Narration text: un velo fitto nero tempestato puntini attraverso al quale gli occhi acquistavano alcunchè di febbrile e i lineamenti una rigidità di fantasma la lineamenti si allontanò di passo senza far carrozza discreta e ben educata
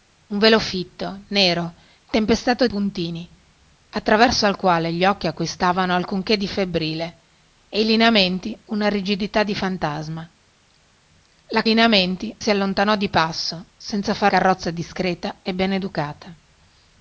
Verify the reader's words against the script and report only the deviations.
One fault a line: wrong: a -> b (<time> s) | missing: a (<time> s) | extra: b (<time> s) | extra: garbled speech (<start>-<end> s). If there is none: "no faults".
no faults